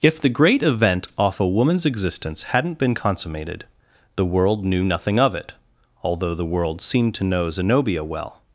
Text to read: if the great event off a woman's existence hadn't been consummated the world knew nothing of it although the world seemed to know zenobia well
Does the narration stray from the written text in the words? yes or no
no